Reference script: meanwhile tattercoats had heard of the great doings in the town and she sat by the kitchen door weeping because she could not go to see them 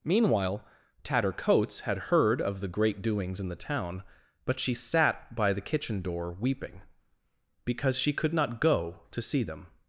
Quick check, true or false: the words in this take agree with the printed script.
false